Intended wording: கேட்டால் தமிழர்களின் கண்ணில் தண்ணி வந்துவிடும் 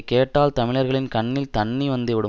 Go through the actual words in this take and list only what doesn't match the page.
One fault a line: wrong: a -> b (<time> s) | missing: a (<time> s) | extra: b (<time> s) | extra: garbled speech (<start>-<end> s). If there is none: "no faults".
no faults